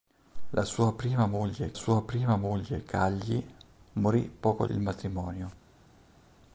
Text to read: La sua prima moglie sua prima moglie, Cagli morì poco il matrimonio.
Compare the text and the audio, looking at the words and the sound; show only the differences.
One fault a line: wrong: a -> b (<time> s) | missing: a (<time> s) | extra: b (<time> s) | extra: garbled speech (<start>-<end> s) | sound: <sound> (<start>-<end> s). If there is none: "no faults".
no faults